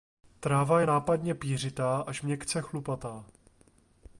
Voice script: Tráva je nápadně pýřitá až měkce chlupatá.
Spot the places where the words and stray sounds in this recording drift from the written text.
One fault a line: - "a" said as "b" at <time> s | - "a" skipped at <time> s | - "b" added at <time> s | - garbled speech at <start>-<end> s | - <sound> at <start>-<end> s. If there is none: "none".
none